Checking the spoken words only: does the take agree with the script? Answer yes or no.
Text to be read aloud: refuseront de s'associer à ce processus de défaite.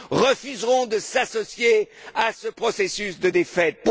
yes